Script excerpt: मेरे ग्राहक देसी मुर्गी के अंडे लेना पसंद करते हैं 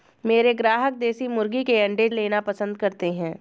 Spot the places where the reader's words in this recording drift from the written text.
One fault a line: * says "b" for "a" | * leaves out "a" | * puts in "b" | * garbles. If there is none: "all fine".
all fine